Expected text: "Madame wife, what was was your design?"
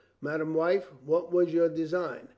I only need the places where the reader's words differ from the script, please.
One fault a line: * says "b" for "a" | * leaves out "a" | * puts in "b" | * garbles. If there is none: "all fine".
* leaves out "was"